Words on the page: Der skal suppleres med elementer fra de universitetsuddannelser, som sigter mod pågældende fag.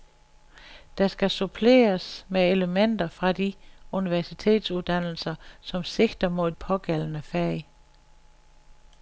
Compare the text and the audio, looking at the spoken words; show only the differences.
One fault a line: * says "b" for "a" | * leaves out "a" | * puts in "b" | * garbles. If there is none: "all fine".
all fine